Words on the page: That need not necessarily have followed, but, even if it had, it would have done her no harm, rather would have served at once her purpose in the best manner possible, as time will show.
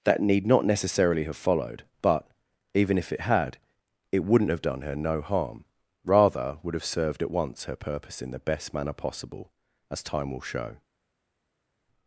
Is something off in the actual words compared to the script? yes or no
yes